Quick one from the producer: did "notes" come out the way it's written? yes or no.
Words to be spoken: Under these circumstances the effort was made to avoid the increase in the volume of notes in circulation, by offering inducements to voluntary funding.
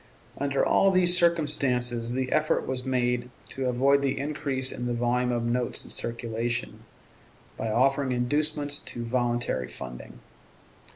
yes